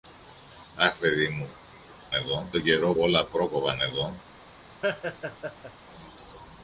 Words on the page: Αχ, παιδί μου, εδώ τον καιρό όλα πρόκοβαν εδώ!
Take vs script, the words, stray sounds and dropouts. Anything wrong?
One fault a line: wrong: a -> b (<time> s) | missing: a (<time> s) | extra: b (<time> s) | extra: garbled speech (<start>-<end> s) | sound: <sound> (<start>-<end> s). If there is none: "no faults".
sound: laugh (4.8-5.7 s)